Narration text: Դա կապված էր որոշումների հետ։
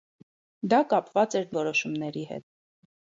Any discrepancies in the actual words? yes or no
no